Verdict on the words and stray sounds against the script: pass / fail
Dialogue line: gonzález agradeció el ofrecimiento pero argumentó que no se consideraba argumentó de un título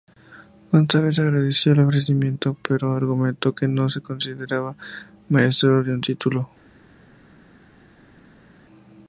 fail